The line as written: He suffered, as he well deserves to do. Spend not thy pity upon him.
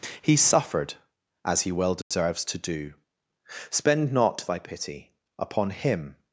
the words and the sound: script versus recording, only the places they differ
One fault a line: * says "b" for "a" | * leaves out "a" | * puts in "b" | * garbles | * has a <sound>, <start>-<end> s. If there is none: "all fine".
* has a dropout, 2.0-2.1 s